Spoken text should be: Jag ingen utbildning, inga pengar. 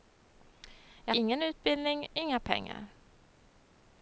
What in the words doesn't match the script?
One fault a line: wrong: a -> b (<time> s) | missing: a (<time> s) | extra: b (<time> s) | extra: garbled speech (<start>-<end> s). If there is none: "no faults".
no faults